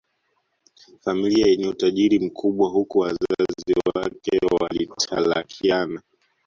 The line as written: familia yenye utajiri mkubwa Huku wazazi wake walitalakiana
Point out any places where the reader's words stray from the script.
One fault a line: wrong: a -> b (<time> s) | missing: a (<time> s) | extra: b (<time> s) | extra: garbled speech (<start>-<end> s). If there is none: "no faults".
no faults